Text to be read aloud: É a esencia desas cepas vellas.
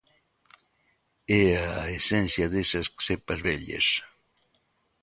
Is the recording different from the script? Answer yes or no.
no